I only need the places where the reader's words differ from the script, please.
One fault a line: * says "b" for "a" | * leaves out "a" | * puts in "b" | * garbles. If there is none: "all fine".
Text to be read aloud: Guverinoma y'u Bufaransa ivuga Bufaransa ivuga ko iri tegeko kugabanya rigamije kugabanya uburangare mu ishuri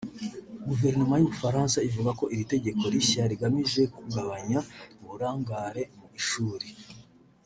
* leaves out "Bufaransa ivuga"
* says "rishya" for "kugabanya"